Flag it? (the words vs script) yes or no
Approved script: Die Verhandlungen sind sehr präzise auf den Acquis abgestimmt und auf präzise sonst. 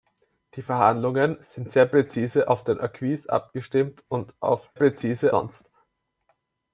no